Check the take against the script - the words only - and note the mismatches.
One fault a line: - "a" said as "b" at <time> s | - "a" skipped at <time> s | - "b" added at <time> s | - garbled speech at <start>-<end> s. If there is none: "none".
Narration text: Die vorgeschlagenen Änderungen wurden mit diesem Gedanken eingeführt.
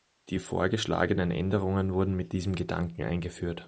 none